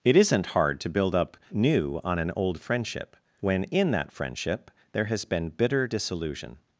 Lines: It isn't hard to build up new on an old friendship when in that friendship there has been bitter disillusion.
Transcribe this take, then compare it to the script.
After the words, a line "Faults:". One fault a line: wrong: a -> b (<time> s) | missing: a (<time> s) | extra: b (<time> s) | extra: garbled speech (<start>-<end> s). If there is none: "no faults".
It isn't hard to build up new on an old friendship when in that friendship there has been bitter disillusion.
Faults:
no faults